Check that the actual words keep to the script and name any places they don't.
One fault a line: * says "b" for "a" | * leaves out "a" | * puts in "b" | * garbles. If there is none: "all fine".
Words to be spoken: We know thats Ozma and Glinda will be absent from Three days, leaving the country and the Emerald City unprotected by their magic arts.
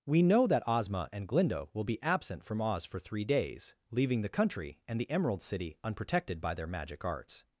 * says "that" for "thats"
* puts in "Oz for"